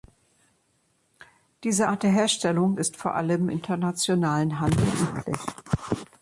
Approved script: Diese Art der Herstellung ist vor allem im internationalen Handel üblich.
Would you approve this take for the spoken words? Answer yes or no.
no